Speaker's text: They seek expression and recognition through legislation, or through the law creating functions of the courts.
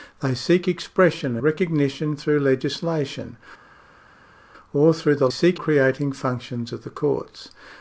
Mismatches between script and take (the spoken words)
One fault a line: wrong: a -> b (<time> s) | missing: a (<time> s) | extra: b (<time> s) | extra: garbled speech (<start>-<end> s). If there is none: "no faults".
missing: and (1.4 s)
wrong: law -> seek (5.3 s)